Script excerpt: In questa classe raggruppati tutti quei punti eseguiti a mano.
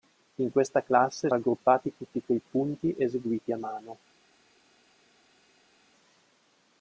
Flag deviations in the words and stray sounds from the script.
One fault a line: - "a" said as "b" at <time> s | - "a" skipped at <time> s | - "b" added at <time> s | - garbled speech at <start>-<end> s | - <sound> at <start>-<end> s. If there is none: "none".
none